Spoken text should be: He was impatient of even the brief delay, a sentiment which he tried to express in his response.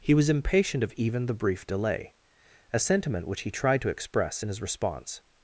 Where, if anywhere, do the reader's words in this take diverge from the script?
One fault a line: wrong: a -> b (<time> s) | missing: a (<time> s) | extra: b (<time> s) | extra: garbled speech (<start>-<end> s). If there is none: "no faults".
no faults